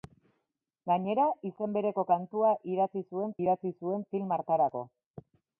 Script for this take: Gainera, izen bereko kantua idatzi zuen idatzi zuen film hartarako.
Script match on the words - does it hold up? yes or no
yes